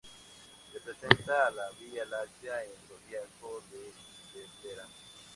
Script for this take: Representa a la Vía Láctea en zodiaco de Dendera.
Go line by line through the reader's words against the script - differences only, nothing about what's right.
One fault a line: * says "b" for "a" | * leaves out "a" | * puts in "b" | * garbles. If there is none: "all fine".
all fine